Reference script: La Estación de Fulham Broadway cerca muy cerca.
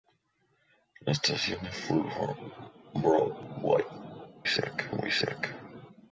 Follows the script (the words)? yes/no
yes